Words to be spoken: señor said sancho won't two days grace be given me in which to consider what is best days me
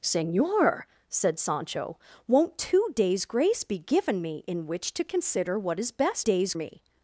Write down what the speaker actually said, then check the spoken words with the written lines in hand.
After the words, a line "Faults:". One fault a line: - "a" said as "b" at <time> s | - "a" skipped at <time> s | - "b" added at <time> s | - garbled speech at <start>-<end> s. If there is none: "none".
señor said sancho won't two days grace be given me in which to consider what is best days me
Faults:
none